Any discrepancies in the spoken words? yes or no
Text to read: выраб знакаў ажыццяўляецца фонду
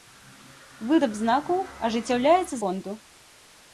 no